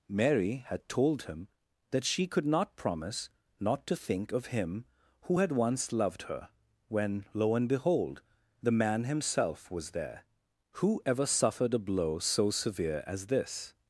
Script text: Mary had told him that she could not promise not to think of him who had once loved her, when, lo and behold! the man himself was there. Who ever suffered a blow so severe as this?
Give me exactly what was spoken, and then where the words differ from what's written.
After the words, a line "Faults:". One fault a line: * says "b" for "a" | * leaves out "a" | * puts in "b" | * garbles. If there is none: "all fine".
Mary had told him that she could not promise not to think of him who had once loved her, when, lo and behold! the man himself was there. Who ever suffered a blow so severe as this?
Faults:
all fine